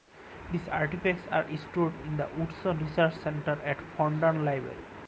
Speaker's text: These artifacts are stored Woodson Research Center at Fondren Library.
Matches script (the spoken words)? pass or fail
fail